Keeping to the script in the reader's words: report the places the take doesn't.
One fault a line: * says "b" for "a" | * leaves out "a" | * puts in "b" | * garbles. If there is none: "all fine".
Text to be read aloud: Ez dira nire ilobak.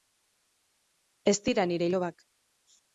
all fine